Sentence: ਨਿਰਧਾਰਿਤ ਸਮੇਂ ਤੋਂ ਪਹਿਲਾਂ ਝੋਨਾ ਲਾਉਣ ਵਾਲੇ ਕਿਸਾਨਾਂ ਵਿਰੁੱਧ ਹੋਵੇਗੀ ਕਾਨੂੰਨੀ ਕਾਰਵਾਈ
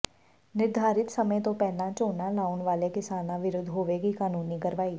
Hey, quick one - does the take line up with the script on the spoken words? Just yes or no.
yes